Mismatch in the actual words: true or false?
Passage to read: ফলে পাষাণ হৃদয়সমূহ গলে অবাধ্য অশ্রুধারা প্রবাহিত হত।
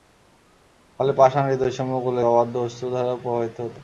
false